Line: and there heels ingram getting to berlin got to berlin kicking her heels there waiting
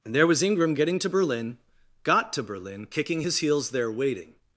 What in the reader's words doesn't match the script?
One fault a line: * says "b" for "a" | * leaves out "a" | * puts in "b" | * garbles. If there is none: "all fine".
* says "was" for "heels"
* says "his" for "her"